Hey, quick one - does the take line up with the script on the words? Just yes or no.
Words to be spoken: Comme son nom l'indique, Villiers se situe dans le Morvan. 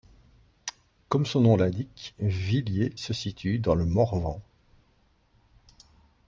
yes